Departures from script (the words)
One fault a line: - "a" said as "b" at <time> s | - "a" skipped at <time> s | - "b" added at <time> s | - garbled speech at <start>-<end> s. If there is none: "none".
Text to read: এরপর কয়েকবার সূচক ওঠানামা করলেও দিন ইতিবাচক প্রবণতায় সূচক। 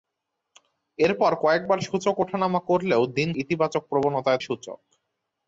none